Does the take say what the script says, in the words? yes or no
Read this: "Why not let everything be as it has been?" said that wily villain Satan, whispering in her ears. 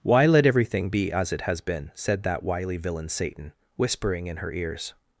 no